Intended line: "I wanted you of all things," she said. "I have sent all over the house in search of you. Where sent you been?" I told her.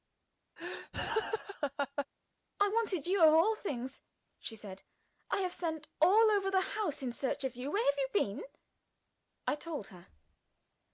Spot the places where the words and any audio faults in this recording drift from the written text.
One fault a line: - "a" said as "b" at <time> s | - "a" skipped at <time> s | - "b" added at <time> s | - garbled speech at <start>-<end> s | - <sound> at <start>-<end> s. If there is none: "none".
- laugh at 0.6-2.1 s
- "sent" said as "have" at 7.8 s